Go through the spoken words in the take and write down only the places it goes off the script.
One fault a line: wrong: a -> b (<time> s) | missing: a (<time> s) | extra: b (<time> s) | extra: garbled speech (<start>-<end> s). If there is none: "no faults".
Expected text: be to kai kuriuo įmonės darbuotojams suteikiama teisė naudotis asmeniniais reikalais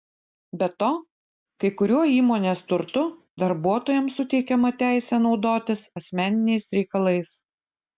extra: turtu (2.7 s)